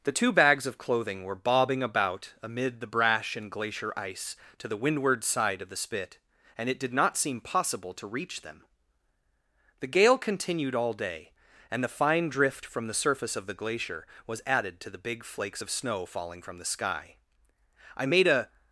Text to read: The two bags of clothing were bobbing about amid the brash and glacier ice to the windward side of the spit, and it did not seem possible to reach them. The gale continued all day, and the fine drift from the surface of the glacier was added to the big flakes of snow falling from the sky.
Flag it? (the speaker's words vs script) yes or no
yes